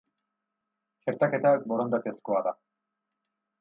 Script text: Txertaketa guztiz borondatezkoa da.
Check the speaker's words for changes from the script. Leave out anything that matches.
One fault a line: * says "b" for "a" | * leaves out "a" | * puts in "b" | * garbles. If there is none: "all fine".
* leaves out "guztiz"